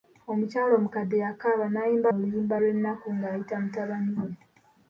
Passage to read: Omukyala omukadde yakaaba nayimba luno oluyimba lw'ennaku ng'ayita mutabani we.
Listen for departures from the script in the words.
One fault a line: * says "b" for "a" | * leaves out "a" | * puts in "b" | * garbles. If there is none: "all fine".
* leaves out "luno"